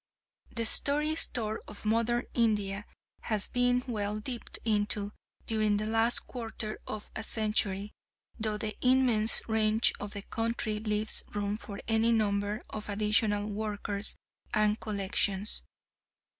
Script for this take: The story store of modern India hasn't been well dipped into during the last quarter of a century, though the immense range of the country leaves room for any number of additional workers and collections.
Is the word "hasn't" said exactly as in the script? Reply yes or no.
no